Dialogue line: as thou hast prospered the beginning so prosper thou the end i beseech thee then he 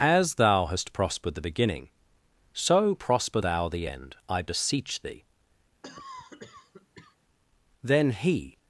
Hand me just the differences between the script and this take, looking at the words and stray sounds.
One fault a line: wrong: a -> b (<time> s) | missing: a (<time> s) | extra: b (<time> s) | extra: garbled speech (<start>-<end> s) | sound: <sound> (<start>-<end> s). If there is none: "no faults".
sound: cough (5.8-7.2 s)